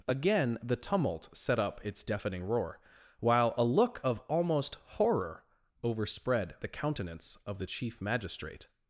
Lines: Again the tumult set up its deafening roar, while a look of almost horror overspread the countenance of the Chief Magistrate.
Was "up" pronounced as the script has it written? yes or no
yes